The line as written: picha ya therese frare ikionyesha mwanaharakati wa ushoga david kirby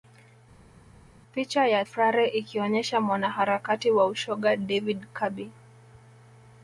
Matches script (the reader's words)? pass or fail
fail